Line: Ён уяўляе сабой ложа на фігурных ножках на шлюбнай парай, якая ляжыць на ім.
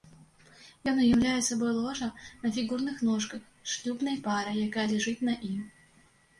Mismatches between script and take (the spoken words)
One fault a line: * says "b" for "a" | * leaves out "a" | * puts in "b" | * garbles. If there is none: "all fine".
* says "з" for "на"